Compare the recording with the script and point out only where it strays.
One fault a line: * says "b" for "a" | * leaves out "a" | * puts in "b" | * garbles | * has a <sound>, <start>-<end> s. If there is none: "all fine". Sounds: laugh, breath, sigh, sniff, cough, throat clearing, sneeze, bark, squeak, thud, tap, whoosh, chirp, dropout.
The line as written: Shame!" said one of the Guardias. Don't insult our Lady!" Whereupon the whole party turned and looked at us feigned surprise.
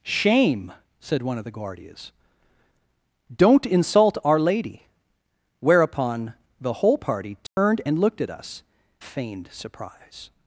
* has a dropout, 7.5-7.6 s